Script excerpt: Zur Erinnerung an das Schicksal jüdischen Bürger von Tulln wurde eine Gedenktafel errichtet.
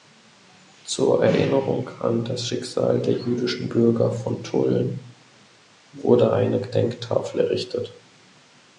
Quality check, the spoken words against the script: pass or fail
fail